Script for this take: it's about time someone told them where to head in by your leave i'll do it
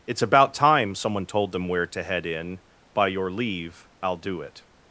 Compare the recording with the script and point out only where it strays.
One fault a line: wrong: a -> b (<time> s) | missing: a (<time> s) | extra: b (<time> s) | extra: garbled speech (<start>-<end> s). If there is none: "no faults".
no faults